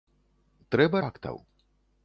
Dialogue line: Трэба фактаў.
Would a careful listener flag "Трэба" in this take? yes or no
no